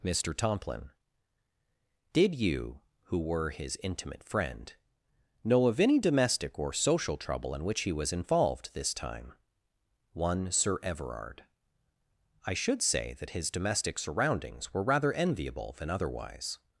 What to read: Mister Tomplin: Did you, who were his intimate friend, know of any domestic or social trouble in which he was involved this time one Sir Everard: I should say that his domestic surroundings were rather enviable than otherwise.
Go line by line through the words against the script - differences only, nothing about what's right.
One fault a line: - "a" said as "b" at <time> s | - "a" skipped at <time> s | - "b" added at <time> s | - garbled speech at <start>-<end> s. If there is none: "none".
none